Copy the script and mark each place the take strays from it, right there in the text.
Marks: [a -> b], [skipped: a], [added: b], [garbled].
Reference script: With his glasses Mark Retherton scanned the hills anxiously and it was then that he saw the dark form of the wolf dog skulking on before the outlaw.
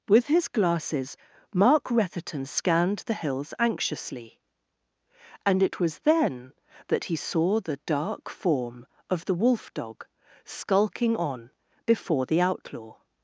With his glasses Mark Retherton scanned the hills anxiously and it was then that he saw the dark form of the wolf dog skulking on before the outlaw.